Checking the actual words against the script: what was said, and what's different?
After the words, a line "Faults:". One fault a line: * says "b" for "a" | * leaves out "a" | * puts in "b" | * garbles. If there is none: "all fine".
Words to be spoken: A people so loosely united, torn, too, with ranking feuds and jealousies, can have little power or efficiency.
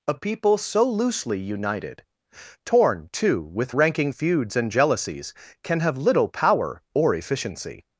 A people so loosely united, torn, too, with ranking feuds and jealousies, can have little power or efficiency.
Faults:
all fine